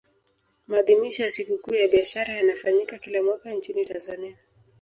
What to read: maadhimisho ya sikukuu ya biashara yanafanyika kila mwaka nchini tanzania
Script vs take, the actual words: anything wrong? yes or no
no